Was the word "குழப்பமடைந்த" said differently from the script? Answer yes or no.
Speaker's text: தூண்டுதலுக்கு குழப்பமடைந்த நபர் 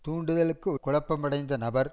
no